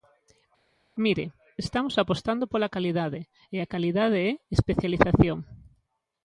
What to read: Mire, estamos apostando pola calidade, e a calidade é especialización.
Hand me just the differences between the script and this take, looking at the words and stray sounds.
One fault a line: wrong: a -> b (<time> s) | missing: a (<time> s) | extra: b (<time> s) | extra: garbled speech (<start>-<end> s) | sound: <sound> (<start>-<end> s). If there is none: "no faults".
no faults